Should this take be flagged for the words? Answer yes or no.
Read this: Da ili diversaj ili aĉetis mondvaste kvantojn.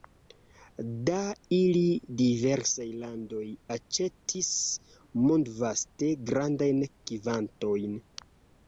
yes